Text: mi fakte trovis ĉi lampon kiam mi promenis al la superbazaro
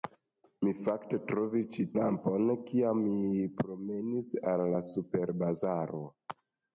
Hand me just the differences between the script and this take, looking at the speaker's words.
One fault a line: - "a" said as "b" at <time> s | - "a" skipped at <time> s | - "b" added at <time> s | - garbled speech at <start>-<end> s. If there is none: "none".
none